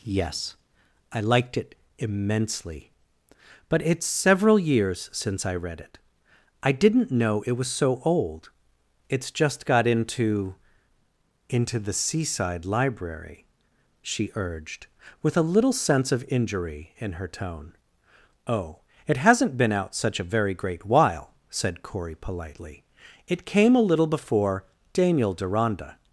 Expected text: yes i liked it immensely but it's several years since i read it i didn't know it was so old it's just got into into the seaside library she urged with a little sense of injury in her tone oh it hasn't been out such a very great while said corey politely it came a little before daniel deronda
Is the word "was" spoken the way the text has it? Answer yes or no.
yes